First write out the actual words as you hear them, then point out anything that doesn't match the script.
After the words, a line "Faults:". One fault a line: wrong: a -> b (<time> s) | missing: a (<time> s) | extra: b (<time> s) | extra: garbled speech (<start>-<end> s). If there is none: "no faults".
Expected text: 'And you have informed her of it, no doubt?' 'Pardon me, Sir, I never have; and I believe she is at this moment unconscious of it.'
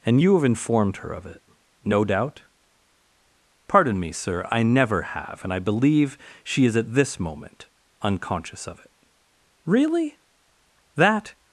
'And you have informed her of it, no doubt?' 'Pardon me, Sir, I never have; and I believe she is at this moment unconscious of it.' 'Really! that
Faults:
extra: Really that (9.6 s)